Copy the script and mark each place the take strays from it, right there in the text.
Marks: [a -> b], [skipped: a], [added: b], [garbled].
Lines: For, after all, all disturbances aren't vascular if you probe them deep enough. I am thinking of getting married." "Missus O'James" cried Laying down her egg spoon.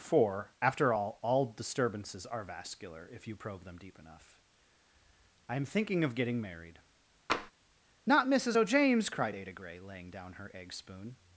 For, after all, all disturbances [aren't -> are] vascular if you probe them deep enough. I am thinking of getting married." [added: Not] "Missus O'James" cried [added: Ada Grey] Laying down her egg spoon.